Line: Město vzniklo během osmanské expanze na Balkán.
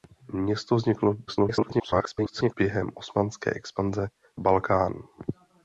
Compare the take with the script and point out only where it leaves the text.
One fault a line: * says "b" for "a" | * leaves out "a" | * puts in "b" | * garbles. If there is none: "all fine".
* garbles
* leaves out "na"